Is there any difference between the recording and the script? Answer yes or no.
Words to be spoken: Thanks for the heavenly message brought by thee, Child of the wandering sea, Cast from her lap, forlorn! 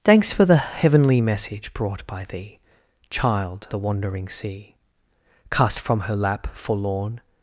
yes